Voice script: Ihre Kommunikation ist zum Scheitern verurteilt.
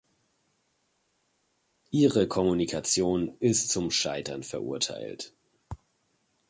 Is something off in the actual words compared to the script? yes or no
no